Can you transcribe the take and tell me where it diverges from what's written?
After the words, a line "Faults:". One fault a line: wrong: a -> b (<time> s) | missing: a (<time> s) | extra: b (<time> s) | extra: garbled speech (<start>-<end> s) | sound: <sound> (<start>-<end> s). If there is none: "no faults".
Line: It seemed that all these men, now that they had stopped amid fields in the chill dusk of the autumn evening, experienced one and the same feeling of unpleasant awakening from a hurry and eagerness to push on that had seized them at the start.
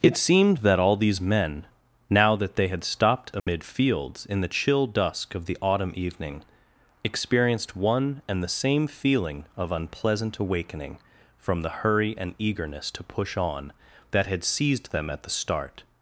It seemed that all these men, now that they had stopped amid fields in the chill dusk of the autumn evening, experienced one and the same feeling of unpleasant awakening from the hurry and eagerness to push on that had seized them at the start.
Faults:
sound: dropout (3.4-3.5 s)
wrong: a -> the (11.6 s)